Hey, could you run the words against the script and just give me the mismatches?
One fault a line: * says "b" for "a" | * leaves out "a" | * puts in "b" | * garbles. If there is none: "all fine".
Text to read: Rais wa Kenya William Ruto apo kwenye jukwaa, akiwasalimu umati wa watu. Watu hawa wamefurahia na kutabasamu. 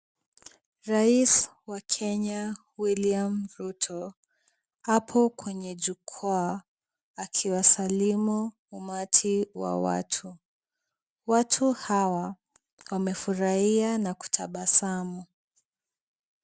all fine